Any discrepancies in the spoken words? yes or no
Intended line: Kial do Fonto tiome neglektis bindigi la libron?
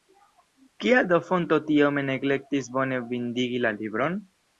yes